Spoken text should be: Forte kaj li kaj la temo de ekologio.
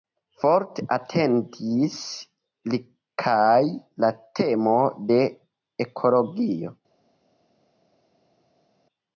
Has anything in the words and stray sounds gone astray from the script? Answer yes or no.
yes